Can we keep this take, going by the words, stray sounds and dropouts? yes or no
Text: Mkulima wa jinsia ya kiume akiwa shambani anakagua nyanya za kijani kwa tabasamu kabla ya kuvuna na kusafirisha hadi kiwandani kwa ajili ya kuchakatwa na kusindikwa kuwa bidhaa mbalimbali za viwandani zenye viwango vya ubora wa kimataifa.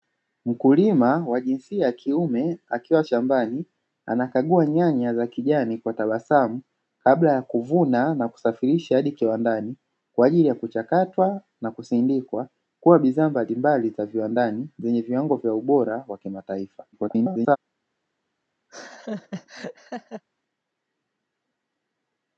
no